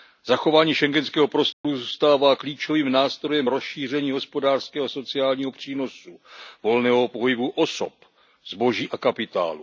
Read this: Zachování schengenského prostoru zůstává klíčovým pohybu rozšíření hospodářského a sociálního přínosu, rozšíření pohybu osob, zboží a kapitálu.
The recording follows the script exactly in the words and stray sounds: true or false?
false